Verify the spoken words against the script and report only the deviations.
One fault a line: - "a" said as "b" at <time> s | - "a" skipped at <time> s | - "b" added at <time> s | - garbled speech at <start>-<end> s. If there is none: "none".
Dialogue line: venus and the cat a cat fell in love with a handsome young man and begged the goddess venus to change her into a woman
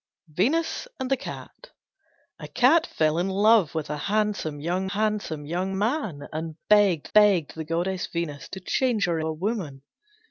- "handsome young" added at 4.9 s
- "begged" added at 7.1 s
- "into" skipped at 9.2 s